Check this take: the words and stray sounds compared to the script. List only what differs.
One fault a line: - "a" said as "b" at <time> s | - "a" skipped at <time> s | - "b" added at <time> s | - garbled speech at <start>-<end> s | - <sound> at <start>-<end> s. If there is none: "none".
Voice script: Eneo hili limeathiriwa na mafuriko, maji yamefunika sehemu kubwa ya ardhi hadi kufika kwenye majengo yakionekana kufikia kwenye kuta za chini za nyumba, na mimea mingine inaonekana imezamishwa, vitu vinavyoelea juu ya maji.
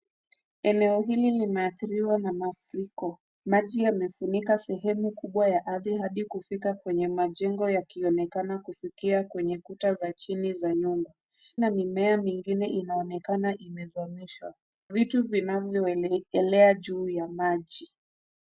none